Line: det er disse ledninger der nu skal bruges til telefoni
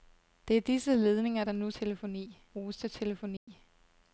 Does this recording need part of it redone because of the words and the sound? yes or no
yes